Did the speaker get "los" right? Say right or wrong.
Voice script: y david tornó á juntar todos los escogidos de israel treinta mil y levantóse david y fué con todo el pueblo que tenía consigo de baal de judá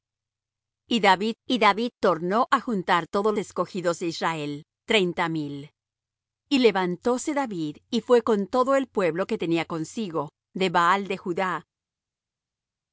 wrong